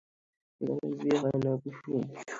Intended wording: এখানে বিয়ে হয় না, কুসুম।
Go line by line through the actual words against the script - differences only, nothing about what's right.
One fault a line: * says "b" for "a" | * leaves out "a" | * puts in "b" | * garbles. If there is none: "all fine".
all fine